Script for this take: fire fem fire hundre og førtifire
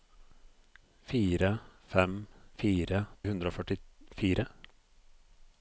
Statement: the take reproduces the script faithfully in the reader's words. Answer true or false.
true